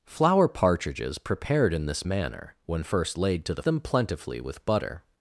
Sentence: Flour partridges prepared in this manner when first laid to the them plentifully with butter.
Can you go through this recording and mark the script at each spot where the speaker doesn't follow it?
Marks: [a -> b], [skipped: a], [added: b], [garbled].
Flour partridges prepared in this manner when first laid to the them plentifully with butter.